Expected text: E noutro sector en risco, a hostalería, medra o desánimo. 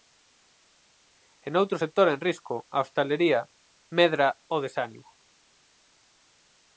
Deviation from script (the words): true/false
false